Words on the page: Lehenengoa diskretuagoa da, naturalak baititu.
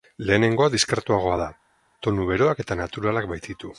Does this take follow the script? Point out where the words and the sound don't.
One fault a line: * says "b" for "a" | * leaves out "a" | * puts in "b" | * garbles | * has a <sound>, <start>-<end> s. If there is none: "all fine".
* puts in "tonu beroak eta"